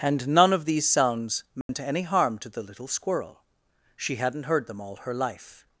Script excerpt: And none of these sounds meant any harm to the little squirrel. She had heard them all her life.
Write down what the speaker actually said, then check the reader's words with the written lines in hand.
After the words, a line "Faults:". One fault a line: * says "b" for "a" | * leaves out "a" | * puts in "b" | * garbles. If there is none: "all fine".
And none of these sounds meant any harm to the little squirrel. She hadn't heard them all her life.
Faults:
* says "hadn't" for "had"